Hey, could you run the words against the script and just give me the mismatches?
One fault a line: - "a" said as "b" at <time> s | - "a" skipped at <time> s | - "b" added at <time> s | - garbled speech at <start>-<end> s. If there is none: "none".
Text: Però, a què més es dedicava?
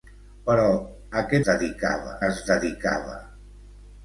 - "més" said as "dedicava" at 1.5 s